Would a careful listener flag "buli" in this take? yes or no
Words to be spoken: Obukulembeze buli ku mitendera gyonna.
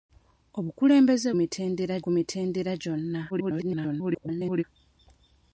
yes